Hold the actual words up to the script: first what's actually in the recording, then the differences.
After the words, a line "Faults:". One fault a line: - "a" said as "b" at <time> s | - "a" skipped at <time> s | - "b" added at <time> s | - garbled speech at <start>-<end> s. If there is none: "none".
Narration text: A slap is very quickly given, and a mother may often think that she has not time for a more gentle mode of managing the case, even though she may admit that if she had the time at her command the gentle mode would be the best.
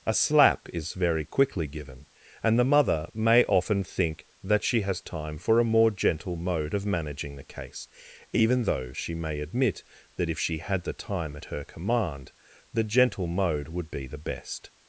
A slap is very quickly given, and the mother may often think that she has time for a more gentle mode of managing the case, even though she may admit that if she had the time at her command the gentle mode would be the best.
Faults:
- "a" said as "the" at 2.6 s
- "not" skipped at 5.0 s